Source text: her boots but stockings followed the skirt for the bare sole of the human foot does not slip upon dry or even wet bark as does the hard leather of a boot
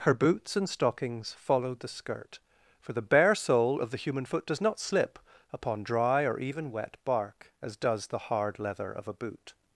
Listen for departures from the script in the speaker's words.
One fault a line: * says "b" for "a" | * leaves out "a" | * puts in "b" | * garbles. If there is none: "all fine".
* says "and" for "but"